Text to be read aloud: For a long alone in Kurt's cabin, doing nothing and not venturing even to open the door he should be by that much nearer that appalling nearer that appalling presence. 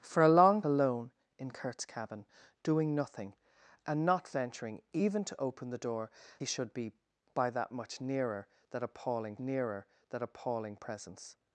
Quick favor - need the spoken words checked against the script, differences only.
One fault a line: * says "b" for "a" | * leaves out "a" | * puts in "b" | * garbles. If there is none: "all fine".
all fine